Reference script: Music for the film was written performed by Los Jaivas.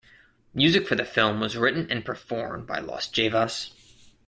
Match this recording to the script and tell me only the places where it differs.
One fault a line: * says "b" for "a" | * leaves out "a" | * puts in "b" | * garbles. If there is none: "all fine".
* puts in "and"